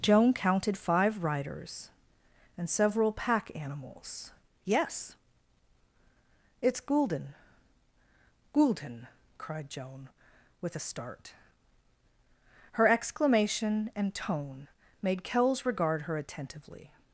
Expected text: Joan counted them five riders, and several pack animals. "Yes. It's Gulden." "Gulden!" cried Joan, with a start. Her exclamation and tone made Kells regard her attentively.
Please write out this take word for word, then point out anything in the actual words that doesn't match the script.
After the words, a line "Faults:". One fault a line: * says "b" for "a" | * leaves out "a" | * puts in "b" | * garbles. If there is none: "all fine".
Joan counted five riders, and several pack animals. "Yes. It's Gulden." "Gulden!" cried Joan, with a start. Her exclamation and tone made Kells regard her attentively.
Faults:
* leaves out "them"